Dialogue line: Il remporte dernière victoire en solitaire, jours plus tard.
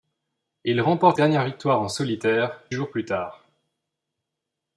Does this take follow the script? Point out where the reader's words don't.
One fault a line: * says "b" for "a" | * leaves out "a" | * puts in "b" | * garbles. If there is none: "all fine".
all fine